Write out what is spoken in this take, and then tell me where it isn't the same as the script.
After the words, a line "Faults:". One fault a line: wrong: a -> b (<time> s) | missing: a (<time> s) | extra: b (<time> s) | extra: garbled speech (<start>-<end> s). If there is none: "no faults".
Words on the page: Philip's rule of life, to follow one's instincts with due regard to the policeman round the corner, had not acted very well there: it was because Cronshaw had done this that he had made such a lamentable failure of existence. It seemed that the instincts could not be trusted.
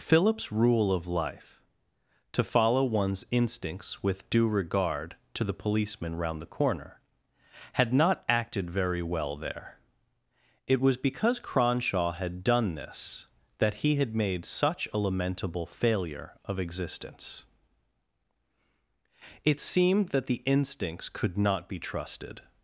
Philip's rule of life, to follow one's instincts with due regard to the policeman round the corner, had not acted very well there: it was because Cronshaw had done this that he had made such a lamentable failure of existence. It seemed that the instincts could not be trusted.
Faults:
no faults